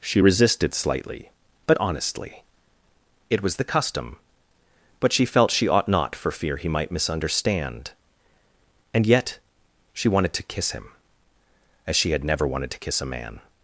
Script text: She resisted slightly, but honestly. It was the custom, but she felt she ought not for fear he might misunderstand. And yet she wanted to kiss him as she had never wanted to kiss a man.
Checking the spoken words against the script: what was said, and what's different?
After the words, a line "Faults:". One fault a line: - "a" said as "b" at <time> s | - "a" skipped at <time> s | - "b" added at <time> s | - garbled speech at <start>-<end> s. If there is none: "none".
She resisted slightly, but honestly. It was the custom, but she felt she ought not for fear he might misunderstand. And yet she wanted to kiss him as she had never wanted to kiss a man.
Faults:
none